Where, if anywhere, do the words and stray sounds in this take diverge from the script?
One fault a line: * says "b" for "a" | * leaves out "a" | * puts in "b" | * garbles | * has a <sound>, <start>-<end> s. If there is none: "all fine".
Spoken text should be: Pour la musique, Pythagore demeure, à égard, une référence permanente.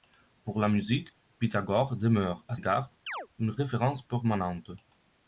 * has a chirp, 3.1-3.3 s